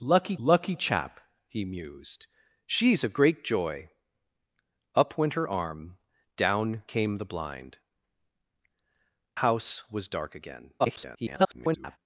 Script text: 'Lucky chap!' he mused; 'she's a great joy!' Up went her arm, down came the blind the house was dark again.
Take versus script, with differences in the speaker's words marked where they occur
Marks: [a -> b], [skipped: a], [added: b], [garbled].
'Lucky [added: lucky] chap!' he mused; 'she's a great joy!' Up went her arm, down came the blind [skipped: the] house was dark again. [garbled]